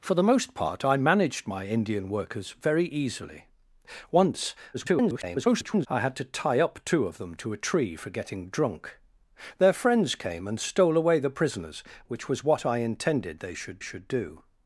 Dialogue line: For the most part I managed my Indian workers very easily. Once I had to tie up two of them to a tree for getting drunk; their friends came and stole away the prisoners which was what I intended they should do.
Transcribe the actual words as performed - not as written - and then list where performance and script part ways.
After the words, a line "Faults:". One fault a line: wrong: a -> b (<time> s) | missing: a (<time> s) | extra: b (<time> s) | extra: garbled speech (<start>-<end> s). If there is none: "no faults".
For the most part I managed my Indian workers very easily. Once [garbled] I had to tie up two of them to a tree for getting drunk; their friends came and stole away the prisoners which was what I intended they should should do.
Faults:
extra: garbled speech (4.7-5.9 s)
extra: should (13.8 s)